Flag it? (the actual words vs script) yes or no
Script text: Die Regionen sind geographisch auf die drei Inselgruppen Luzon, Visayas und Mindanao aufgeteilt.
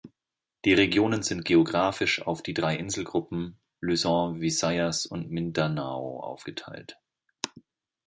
no